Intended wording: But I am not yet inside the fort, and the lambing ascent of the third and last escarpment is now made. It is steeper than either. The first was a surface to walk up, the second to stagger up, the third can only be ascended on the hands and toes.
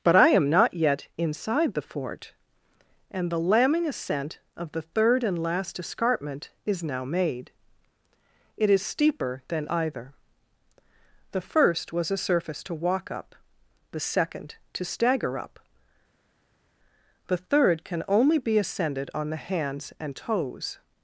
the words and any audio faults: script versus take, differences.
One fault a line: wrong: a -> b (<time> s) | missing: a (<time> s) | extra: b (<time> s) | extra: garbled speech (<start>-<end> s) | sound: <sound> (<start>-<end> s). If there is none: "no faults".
no faults